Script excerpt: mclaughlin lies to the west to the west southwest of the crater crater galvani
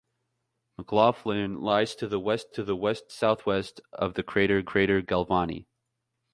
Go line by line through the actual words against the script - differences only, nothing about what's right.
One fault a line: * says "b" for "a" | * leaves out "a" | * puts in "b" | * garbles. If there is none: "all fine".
all fine